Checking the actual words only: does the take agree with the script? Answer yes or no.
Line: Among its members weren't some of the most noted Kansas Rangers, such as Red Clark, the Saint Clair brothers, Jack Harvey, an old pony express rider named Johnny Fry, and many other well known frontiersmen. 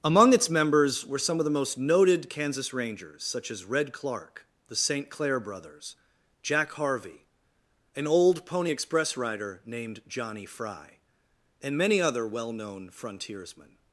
no